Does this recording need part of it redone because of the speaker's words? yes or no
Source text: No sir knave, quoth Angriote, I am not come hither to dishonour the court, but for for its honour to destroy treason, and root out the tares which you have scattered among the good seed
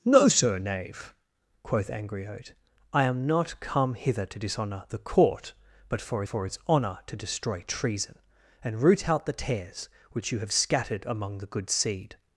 no